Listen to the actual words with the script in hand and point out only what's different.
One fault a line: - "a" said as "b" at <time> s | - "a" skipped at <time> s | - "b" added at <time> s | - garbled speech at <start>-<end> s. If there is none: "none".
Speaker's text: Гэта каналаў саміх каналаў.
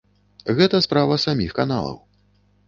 - "каналаў" said as "справа" at 0.8 s